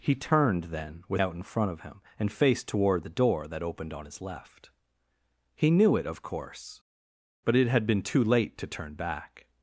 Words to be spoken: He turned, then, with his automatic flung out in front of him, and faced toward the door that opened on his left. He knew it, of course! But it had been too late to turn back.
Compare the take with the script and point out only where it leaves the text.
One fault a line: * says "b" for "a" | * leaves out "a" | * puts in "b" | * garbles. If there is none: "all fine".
* leaves out "his automatic flung"